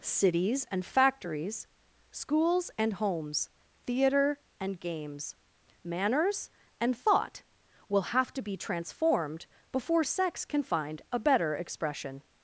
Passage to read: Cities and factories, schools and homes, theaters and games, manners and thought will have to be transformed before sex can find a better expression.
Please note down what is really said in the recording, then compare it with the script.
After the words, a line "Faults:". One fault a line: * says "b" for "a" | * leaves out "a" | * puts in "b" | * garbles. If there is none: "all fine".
Cities and factories, schools and homes, theater and games, manners and thought will have to be transformed before sex can find a better expression.
Faults:
* says "theater" for "theaters"